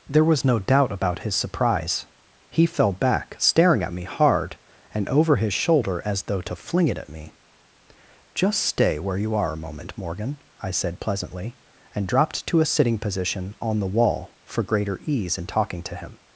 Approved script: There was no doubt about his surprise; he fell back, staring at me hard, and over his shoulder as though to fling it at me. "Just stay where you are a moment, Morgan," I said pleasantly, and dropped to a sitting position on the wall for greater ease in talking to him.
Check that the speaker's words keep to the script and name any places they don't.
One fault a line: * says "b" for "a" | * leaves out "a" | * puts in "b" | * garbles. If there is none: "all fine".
all fine